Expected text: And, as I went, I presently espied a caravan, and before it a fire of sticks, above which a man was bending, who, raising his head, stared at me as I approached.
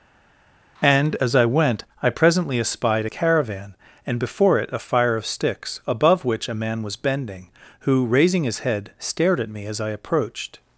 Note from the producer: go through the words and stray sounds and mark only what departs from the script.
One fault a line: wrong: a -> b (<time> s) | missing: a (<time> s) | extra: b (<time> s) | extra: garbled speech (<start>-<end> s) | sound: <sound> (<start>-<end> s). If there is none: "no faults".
no faults